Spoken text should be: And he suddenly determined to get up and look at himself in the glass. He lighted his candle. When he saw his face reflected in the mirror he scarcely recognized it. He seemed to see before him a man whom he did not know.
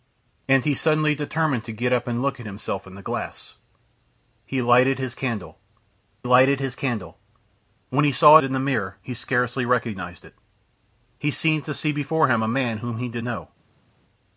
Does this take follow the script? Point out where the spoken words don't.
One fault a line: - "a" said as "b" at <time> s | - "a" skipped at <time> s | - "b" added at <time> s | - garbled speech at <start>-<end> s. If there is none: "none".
- "lighted his candle" added at 6.2 s
- "his face reflected" skipped at 8.4 s
- "not" skipped at 13.2 s